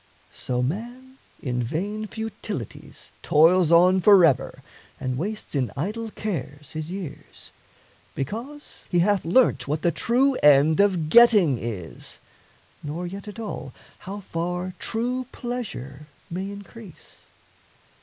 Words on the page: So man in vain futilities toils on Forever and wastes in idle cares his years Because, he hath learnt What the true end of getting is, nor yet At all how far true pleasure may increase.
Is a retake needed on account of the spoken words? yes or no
no